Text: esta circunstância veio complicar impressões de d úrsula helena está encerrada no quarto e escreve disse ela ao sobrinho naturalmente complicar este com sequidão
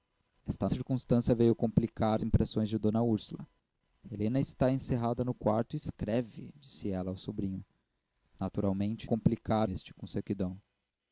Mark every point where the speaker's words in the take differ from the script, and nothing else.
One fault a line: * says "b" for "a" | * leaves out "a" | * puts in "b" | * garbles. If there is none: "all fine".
all fine